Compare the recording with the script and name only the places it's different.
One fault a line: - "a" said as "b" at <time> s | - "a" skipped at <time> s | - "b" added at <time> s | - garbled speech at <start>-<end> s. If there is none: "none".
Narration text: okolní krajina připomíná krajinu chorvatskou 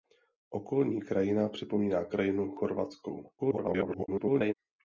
- garbled speech at 3.4-4.5 s